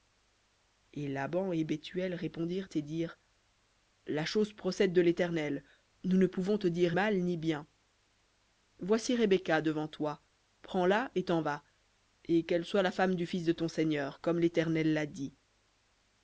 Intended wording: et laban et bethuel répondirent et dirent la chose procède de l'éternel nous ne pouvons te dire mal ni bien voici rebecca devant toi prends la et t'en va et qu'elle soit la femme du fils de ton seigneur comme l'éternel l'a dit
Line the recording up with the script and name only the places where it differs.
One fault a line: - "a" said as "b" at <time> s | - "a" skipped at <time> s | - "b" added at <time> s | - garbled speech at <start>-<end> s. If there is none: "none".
none